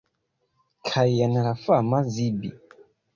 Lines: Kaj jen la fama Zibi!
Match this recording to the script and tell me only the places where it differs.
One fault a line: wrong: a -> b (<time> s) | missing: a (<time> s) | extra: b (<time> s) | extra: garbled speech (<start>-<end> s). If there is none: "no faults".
no faults